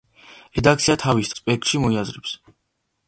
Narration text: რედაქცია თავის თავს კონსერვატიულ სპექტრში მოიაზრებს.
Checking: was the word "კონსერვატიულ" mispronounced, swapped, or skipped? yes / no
yes